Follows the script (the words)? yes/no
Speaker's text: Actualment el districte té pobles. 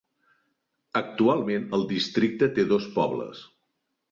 no